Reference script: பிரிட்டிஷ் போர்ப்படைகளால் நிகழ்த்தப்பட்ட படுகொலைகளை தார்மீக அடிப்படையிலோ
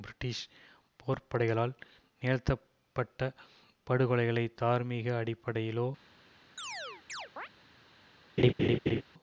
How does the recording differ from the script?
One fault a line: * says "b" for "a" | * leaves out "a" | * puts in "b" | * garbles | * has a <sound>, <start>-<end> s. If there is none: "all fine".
* has a chirp, 6.6-7.5 s
* has a laugh, 8.4-9.0 s